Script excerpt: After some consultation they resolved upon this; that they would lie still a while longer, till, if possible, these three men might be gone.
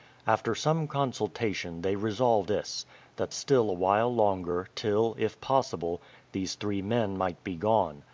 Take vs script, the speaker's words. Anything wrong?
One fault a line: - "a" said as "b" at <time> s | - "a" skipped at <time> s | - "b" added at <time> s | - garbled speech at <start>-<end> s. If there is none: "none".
- "upon" skipped at 2.5 s
- "they would lie" skipped at 3.3 s